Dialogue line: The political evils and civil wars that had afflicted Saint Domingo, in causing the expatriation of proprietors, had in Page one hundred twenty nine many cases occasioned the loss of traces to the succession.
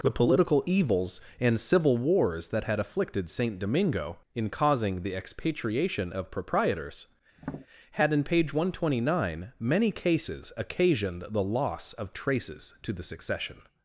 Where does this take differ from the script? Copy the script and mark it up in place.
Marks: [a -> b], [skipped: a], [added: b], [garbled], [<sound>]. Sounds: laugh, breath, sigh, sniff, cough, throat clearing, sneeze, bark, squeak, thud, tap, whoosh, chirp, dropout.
The political evils and civil wars that had afflicted Saint Domingo, in causing the expatriation of proprietors, [tap] had in Page one hundred twenty nine many cases occasioned the loss of traces to the succession.